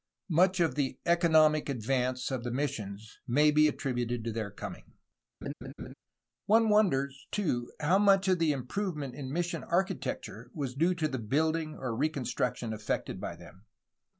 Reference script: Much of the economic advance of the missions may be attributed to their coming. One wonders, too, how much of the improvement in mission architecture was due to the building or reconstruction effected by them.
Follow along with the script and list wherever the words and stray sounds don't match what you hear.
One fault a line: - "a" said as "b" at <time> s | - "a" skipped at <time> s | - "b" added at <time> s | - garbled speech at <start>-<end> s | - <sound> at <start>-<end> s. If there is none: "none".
- laugh at 5.4-5.9 s